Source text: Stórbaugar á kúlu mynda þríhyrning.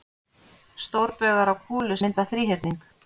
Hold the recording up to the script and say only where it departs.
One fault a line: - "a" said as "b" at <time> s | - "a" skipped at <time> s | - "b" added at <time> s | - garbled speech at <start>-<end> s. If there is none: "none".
none